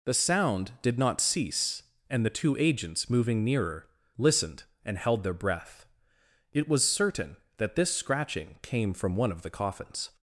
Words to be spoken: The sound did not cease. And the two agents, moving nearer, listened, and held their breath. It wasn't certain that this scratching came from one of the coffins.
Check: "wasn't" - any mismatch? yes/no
yes